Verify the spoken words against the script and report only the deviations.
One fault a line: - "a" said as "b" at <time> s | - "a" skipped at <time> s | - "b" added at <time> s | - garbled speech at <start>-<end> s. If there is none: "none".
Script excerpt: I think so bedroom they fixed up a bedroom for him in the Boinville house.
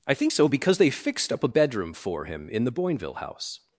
- "bedroom" said as "because" at 0.4 s